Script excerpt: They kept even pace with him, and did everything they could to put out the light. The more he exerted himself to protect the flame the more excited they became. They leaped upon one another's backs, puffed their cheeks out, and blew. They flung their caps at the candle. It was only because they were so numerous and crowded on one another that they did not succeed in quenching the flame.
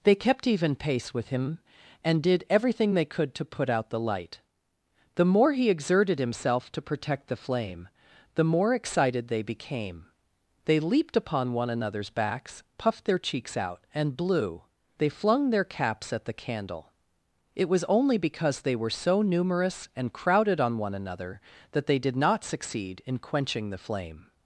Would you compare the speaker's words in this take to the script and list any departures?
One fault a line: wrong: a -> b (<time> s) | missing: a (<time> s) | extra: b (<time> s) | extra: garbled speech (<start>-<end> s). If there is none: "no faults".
no faults